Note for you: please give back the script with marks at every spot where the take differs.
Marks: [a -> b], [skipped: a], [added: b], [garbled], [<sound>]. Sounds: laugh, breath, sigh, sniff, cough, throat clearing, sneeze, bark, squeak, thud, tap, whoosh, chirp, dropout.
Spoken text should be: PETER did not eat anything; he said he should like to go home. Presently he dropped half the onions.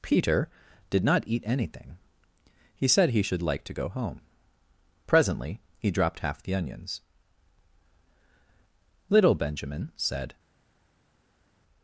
PETER did not eat anything; he said he should like to go home. Presently he dropped half the onions. [added: LITTLE Benjamin said]